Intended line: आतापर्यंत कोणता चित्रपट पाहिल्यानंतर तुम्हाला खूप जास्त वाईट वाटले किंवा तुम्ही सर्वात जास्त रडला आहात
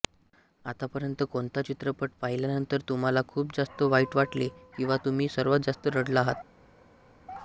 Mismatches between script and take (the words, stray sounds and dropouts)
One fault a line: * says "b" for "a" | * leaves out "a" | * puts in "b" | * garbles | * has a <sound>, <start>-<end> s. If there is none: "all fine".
all fine